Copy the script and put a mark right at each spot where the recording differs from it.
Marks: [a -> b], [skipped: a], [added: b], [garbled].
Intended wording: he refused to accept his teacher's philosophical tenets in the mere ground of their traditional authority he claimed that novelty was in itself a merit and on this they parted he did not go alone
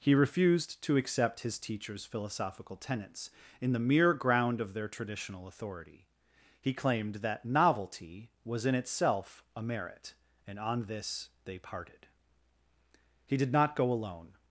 he refused to accept his teacher's philosophical tenets in the mere ground of their traditional authority he claimed that novelty was in itself a merit and on this they parted he did not go alone